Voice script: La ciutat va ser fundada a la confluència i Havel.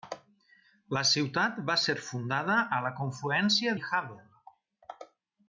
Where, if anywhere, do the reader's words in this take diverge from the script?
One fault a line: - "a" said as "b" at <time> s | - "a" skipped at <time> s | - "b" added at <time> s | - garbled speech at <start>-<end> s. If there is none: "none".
none